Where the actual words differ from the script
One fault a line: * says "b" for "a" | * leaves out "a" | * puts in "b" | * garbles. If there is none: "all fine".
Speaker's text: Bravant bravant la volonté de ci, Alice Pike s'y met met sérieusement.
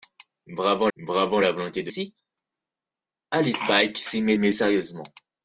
all fine